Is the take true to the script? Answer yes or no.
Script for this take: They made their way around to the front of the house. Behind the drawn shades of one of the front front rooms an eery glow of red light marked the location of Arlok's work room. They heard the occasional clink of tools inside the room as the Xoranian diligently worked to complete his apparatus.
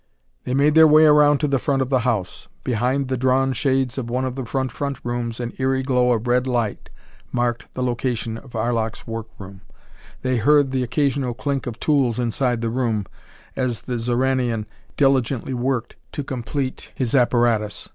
yes